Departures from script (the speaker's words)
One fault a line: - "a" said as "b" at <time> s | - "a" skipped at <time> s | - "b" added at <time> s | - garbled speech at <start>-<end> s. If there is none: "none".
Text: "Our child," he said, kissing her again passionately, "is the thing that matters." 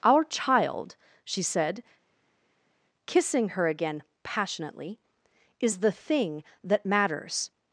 - "he" said as "she" at 1.2 s